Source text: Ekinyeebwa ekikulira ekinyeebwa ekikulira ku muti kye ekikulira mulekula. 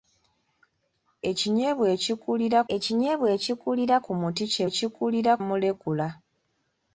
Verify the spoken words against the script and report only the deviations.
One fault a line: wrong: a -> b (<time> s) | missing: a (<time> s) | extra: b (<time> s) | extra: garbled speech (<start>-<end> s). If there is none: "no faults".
no faults